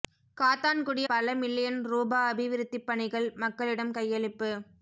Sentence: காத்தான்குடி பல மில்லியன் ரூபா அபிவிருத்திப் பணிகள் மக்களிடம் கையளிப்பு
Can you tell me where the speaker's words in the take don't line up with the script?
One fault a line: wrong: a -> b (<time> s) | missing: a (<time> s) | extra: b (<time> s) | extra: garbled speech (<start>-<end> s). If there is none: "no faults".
no faults